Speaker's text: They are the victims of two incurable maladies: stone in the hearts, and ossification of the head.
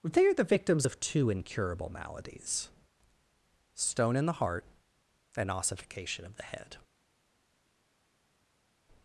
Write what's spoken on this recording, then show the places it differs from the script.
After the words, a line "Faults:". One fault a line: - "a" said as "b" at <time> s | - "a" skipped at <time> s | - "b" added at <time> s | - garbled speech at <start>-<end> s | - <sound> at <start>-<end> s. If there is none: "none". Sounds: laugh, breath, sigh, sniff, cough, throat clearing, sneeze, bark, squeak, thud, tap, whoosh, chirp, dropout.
They are the victims of two incurable maladies: stone in the heart, and ossification of the head.
Faults:
- "hearts" said as "heart" at 4.4 s